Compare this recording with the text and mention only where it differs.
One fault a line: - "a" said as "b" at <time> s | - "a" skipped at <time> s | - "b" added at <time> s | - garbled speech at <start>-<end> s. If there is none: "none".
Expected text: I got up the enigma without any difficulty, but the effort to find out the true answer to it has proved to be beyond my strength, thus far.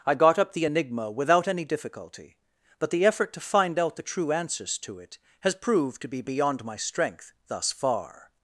- "answer" said as "answers" at 4.3 s